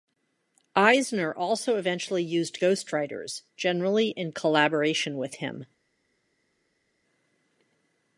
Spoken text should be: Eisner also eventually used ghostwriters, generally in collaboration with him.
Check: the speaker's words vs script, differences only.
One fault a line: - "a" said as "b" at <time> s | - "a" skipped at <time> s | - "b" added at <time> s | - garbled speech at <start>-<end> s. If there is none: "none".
none